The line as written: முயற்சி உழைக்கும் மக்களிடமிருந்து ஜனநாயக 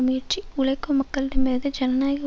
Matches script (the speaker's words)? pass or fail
pass